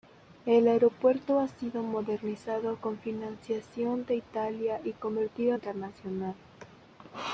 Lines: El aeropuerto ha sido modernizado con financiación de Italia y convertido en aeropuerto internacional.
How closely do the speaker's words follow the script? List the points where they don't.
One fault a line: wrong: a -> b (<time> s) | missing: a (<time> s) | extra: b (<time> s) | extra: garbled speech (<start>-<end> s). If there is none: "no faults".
missing: en aeropuerto (5.6 s)